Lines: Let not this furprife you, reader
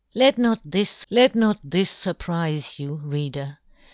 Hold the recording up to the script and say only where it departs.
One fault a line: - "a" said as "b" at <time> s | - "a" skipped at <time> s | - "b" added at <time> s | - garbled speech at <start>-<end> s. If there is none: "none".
- "let not this" added at 1.1 s